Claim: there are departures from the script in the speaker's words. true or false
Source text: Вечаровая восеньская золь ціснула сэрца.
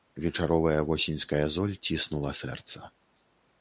false